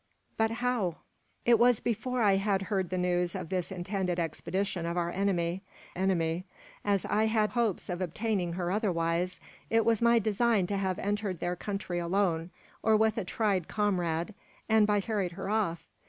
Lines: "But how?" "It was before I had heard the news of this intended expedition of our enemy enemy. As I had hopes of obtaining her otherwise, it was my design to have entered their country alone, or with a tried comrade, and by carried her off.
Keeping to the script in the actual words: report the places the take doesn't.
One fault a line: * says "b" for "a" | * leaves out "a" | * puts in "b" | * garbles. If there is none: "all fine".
all fine